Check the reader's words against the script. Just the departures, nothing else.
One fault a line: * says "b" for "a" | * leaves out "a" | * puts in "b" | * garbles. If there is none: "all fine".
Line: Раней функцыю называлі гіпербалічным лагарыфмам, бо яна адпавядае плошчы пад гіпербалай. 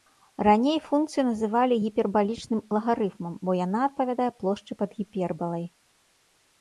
all fine